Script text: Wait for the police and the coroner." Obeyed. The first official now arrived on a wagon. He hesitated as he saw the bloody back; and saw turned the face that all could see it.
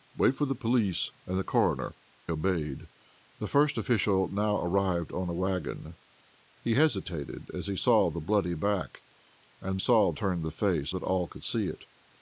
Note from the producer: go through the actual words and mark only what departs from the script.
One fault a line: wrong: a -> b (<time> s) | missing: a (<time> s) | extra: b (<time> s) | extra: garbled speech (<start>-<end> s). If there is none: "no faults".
no faults